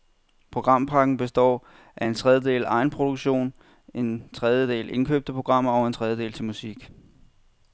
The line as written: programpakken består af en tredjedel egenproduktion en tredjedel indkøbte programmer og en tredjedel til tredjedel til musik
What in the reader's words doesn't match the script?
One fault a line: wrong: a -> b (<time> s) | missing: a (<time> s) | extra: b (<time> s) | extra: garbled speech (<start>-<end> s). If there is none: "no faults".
missing: tredjedel til (6.4 s)